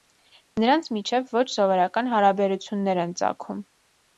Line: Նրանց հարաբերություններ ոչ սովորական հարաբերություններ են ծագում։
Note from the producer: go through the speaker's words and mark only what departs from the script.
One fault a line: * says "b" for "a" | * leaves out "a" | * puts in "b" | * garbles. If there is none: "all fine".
* says "միջև" for "հարաբերություններ"